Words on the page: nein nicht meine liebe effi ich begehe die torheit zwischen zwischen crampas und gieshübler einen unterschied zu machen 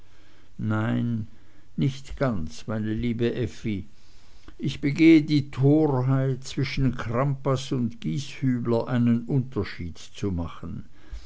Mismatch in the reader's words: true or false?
true